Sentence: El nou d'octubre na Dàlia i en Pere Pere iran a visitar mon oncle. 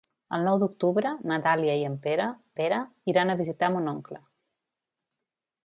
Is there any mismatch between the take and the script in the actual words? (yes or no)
no